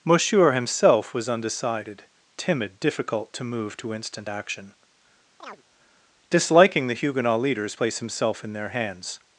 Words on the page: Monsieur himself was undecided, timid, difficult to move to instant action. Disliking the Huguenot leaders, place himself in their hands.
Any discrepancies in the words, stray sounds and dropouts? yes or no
yes